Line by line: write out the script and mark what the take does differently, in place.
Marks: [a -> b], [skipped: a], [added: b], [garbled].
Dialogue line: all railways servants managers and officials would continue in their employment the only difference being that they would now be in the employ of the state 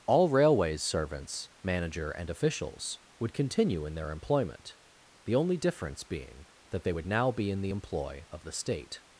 all railways servants [managers -> manager] and officials would continue in their employment the only difference being that they would now be in the employ of the state